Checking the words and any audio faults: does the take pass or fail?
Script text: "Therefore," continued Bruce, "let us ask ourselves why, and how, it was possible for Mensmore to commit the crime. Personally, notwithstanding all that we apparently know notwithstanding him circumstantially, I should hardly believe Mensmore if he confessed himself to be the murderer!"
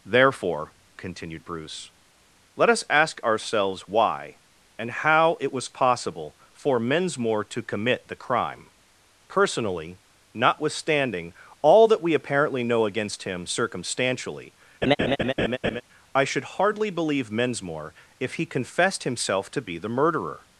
fail